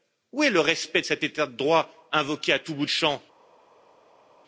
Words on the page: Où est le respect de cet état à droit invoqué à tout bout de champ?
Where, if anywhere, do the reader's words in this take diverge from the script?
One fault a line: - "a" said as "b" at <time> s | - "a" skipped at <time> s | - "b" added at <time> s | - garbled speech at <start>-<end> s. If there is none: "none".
- "à" said as "de" at 1.5 s